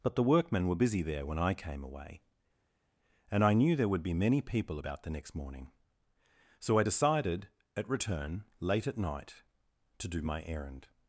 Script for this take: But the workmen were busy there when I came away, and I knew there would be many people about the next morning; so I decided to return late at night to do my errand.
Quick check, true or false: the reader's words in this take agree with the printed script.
false